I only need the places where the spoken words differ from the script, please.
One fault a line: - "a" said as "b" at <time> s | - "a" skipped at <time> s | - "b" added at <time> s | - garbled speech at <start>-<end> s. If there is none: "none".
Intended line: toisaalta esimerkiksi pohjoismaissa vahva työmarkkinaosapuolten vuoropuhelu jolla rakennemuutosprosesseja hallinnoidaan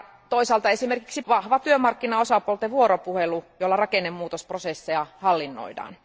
- "pohjoismaissa" skipped at 1.2 s